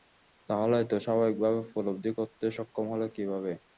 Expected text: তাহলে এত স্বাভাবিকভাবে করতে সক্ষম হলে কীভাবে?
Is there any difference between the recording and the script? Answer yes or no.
yes